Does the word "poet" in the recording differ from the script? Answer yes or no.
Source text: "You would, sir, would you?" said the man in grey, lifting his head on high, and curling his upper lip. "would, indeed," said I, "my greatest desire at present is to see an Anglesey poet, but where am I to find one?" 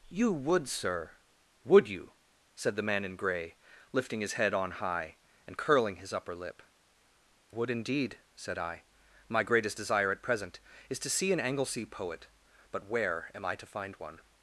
no